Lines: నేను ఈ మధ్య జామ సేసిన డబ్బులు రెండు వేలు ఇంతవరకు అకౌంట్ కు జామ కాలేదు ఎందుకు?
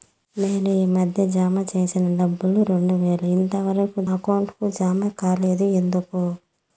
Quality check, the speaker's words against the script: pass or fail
pass